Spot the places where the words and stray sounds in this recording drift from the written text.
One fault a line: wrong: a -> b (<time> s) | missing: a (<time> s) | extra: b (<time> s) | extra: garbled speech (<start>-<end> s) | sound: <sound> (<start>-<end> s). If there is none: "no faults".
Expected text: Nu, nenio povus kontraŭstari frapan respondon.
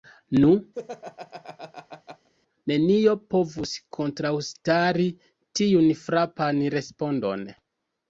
sound: laugh (0.7-2.3 s)
extra: tiun (5.6 s)